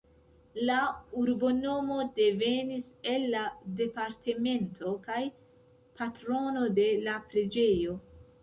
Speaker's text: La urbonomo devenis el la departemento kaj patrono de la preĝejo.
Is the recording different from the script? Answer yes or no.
no